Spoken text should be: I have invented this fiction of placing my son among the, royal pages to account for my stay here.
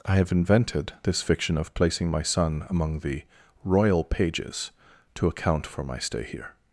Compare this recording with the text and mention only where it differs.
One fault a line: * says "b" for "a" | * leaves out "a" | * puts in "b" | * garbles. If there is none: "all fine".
all fine